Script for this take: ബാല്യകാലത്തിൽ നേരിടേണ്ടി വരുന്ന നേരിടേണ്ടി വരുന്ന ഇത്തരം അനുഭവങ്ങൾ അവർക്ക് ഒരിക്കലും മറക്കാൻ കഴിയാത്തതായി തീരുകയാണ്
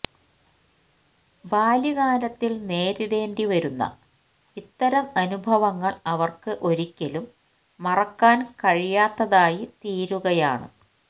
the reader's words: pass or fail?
fail